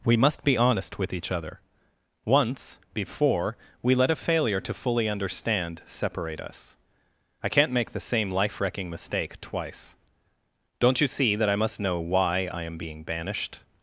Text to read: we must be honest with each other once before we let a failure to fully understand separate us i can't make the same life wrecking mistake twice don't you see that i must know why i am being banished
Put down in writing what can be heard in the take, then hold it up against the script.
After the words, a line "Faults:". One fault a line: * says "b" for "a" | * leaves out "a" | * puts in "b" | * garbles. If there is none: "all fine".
we must be honest with each other once before we let a failure to fully understand separate us i can't make the same life wrecking mistake twice don't you see that i must know why i am being banished
Faults:
all fine